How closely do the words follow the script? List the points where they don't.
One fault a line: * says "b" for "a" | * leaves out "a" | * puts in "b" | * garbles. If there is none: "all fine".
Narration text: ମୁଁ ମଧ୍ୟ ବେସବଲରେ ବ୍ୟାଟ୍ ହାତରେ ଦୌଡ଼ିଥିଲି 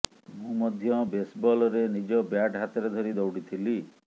* puts in "ନିଜ"
* puts in "ଧରି"